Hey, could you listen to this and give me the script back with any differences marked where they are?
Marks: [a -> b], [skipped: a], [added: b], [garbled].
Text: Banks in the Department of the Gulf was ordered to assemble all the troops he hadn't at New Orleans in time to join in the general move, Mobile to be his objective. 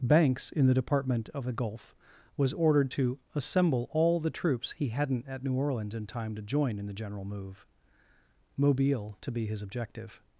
Banks in the Department of the Gulf was ordered to assemble all the troops he hadn't at New Orleans in time to join in the general move, Mobile to be his objective.